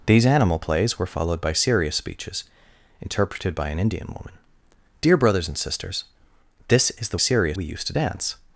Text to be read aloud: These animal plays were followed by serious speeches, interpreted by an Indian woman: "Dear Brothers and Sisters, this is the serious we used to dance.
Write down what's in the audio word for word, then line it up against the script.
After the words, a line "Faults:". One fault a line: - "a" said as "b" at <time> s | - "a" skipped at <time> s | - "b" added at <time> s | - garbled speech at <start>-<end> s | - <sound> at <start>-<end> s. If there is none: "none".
These animal plays were followed by serious speeches, interpreted by an Indian woman: "Dear Brothers and Sisters, this is the serious we used to dance.
Faults:
none